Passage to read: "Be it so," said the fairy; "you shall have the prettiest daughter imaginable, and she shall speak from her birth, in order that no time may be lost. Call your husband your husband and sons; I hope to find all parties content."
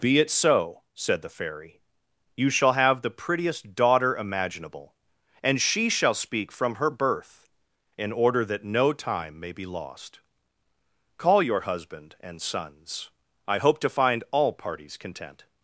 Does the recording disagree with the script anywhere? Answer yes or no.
yes